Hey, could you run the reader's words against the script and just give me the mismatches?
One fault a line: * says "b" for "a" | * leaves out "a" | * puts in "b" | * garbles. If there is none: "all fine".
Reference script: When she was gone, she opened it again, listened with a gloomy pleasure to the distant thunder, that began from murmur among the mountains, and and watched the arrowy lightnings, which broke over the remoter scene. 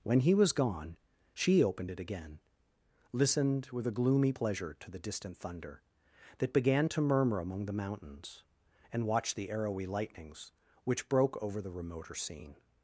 * says "he" for "she"
* says "to" for "from"
* leaves out "and"